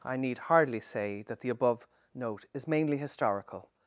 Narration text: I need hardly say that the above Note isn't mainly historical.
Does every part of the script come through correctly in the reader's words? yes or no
no